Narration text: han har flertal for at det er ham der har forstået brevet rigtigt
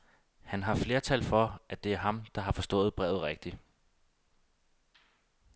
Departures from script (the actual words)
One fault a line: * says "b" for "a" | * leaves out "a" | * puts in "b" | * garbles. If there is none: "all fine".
all fine